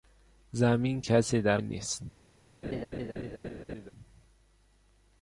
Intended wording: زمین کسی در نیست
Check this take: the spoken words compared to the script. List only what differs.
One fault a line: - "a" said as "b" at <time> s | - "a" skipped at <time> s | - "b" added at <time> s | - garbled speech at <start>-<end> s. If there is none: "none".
none